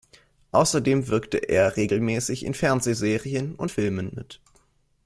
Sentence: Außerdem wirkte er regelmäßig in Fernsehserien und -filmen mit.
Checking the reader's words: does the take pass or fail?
pass